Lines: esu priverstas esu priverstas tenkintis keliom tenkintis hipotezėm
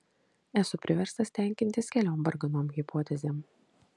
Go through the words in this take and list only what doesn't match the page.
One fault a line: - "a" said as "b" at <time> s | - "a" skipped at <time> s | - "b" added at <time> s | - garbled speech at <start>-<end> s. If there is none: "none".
- "esu priverstas" skipped at 1.3 s
- "tenkintis" said as "varganom" at 2.3 s